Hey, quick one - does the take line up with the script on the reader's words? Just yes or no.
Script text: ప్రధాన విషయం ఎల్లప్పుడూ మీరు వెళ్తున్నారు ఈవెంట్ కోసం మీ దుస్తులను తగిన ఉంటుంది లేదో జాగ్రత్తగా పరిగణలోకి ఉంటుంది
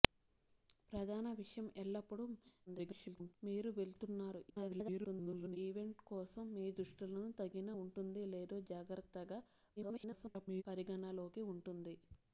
no